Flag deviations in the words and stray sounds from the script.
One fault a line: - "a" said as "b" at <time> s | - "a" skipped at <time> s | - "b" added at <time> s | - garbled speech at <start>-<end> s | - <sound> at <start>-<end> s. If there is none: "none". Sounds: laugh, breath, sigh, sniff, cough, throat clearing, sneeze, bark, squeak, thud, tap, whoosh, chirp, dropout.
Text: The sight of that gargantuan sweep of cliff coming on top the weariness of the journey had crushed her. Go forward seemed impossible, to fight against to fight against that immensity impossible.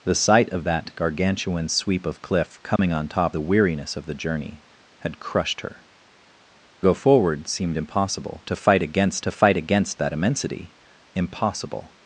- dropout at 2.8-2.8 s